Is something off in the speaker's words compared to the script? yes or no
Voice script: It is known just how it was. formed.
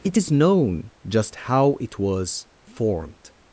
no